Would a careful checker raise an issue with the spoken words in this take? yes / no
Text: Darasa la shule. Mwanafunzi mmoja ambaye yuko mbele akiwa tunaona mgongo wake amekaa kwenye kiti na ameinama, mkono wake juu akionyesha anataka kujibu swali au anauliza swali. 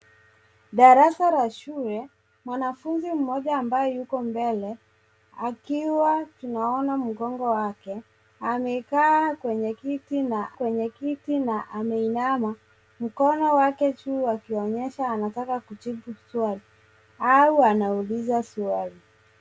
yes